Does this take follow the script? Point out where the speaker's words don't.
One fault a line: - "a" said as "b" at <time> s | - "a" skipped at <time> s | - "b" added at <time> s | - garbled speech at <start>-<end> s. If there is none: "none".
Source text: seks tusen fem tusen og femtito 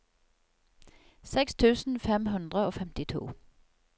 - "tusen" said as "hundre" at 2.3 s